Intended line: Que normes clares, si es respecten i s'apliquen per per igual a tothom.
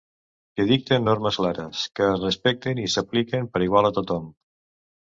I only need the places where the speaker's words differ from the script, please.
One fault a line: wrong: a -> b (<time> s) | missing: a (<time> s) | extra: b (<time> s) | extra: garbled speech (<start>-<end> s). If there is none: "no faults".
extra: dicten (0.7 s)
wrong: si -> que (2.0 s)
missing: per (3.7 s)